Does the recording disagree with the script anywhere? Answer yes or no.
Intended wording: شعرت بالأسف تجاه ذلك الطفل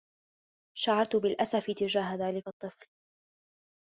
no